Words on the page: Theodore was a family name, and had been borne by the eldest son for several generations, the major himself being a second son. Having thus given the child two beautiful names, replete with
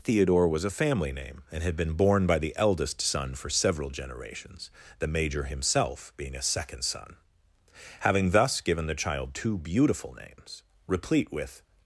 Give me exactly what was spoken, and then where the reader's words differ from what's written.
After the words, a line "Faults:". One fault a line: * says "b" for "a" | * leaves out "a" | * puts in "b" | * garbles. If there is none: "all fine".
Theodore was a family name, and had been borne by the eldest son for several generations, the major himself being a second son. Having thus given the child two beautiful names, replete with
Faults:
all fine